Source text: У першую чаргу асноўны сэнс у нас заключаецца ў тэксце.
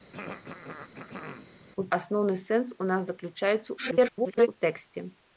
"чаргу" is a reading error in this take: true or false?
true